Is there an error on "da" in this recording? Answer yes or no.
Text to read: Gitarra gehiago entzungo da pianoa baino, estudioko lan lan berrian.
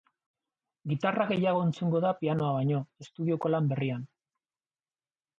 no